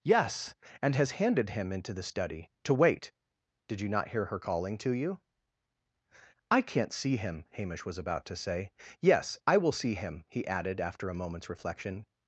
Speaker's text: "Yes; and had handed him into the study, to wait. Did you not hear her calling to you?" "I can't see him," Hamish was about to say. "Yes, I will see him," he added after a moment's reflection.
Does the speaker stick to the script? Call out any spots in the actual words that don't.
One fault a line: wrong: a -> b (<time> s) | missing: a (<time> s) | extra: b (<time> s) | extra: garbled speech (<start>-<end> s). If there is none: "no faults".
wrong: had -> has (0.9 s)